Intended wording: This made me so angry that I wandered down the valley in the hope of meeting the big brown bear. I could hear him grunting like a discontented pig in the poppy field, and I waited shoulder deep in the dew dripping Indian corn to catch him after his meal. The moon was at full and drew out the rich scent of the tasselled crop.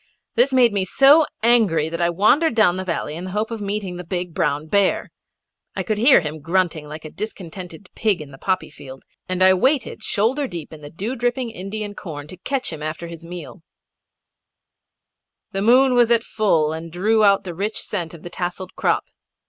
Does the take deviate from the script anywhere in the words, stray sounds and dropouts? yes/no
no